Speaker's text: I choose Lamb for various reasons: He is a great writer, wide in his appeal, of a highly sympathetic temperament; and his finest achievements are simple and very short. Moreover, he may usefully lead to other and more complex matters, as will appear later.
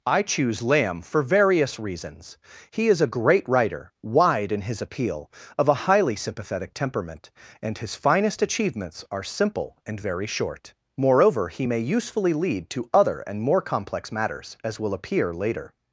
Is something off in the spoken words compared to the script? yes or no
no